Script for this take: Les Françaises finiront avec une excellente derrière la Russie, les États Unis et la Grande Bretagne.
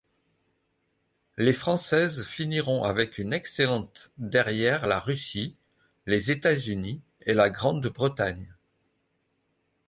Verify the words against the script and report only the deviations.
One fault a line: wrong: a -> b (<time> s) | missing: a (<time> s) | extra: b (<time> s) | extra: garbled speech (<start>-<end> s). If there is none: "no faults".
no faults